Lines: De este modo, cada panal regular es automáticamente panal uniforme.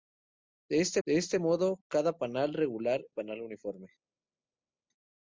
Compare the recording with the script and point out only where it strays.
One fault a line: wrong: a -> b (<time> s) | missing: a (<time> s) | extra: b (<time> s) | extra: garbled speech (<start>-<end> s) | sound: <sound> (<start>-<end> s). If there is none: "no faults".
extra: de este (1.0 s)
missing: es automáticamente (3.0 s)